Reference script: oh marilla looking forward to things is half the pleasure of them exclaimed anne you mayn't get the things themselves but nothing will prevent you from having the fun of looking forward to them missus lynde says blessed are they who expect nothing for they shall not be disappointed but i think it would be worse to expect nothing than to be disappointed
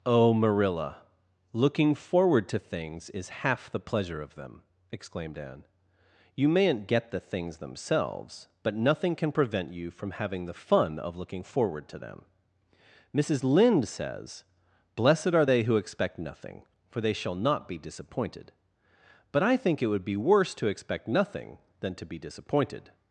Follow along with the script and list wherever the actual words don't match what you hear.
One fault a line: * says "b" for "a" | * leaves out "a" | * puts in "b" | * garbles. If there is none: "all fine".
* says "can" for "will"